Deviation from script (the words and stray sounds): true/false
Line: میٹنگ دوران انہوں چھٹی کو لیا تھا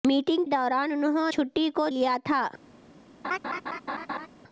true